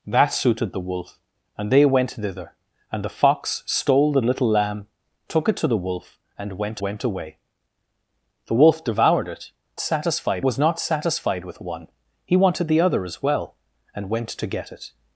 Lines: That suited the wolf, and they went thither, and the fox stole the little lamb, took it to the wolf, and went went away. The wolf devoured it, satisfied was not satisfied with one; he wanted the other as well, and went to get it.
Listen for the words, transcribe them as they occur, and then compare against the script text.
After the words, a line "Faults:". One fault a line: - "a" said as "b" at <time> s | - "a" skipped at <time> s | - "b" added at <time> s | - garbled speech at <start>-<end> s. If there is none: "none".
That suited the wolf, and they went thither, and the fox stole the little lamb, took it to the wolf, and went went away. The wolf devoured it, satisfied was not satisfied with one; he wanted the other as well, and went to get it.
Faults:
none